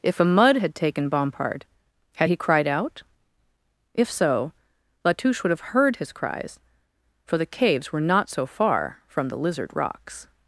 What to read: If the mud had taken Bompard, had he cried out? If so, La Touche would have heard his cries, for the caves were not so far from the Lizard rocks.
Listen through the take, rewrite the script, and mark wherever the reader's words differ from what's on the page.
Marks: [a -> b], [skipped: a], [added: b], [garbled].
If [the -> a] mud had taken Bompard, had he cried out? If so, La Touche would have heard his cries, for the caves were not so far from the Lizard rocks.